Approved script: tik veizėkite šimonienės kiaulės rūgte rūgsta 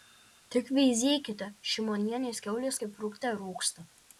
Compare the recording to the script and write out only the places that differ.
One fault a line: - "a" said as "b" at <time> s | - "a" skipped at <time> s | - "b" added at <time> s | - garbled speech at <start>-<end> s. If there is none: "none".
- "kaip" added at 2.8 s